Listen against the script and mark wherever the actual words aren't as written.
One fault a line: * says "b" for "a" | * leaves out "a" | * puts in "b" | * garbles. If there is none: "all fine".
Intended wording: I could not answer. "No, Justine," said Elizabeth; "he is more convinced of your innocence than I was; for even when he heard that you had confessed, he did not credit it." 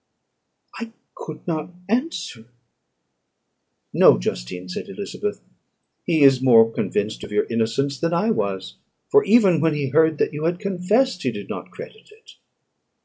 all fine